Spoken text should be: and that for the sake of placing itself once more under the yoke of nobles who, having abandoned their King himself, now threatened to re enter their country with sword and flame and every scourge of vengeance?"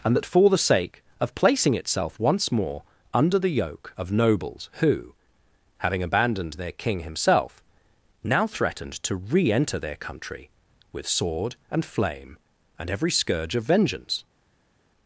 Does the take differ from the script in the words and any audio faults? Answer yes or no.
no